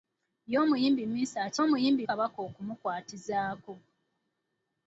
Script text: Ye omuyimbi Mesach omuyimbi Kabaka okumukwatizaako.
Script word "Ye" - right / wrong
right